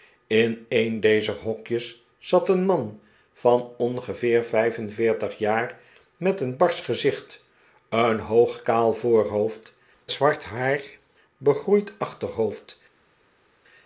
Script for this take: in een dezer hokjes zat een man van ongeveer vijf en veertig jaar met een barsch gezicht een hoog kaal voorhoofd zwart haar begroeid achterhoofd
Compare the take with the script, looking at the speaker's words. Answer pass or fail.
pass